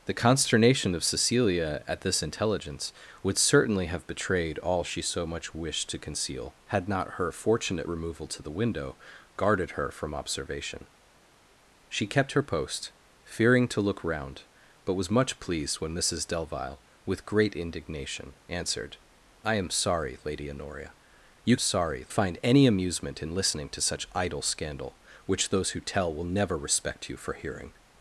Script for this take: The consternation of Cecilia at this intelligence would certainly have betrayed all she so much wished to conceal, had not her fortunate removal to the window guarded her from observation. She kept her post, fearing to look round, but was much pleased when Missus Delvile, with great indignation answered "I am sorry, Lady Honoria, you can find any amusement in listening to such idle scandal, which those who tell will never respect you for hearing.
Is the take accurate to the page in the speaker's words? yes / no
no